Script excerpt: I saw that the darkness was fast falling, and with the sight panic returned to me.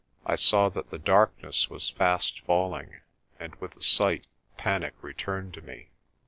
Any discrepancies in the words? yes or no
no